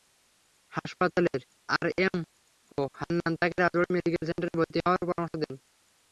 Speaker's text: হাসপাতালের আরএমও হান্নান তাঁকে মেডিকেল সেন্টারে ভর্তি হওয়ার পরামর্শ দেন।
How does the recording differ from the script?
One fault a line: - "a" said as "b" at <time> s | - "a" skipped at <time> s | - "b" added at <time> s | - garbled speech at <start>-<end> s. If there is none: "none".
- "রাজবাড়ী" added at 3.6 s